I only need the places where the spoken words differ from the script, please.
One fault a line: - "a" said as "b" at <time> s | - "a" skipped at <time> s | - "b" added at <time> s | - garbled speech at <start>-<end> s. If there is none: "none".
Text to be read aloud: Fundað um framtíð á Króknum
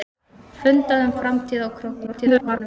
- garbled speech at 2.1-2.6 s